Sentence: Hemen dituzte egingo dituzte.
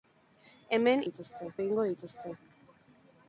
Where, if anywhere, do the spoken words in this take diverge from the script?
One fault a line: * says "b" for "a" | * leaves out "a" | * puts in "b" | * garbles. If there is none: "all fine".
all fine